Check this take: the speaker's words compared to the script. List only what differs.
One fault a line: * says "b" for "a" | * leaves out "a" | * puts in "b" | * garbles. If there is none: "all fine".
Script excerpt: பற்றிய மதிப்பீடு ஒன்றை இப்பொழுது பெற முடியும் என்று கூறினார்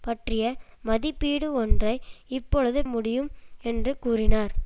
* leaves out "பெற"